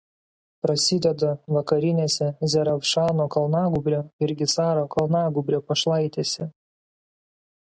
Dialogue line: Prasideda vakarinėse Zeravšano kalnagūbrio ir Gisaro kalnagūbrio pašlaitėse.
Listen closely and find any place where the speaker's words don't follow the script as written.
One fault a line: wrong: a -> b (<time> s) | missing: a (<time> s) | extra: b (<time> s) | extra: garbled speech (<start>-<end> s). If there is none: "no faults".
no faults